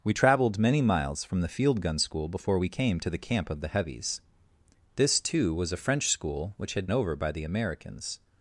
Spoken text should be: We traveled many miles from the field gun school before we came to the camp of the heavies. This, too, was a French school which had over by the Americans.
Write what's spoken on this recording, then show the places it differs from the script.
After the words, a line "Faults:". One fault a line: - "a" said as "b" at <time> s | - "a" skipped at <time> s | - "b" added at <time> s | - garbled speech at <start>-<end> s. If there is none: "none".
We traveled many miles from the field gun school before we came to the camp of the heavies. This, too, was a French school which had over by the Americans.
Faults:
none